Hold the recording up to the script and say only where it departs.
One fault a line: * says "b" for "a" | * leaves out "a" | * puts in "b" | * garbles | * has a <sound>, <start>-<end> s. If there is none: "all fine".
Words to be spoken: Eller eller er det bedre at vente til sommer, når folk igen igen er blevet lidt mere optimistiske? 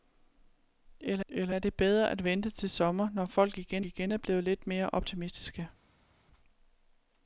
all fine